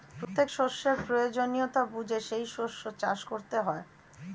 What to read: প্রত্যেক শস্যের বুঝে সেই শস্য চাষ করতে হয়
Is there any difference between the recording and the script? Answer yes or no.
yes